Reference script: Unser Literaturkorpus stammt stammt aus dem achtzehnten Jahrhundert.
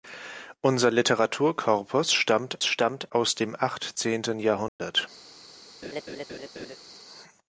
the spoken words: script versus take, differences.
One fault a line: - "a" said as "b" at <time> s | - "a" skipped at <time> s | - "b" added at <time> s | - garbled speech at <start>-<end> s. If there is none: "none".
none